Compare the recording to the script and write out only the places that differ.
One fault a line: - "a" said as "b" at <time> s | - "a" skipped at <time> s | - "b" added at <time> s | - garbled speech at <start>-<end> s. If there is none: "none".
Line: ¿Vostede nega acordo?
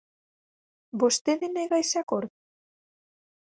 - "ese" added at 1.8 s